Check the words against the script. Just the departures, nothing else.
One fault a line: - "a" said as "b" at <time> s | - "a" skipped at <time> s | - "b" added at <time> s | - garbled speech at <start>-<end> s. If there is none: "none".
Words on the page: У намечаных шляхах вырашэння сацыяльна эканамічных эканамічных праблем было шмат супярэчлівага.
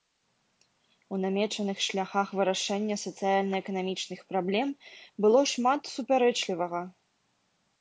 - "эканамічных" skipped at 4.2 s